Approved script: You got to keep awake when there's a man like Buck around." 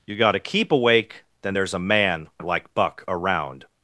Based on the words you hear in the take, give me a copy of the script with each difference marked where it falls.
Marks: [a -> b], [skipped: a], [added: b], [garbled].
You got to keep awake [when -> then] there's a man like Buck around."